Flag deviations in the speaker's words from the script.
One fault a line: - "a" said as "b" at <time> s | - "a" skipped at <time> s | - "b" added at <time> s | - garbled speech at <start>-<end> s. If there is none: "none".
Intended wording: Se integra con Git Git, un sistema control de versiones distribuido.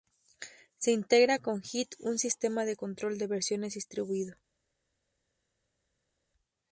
- "Git" skipped at 1.9 s
- "de" added at 2.6 s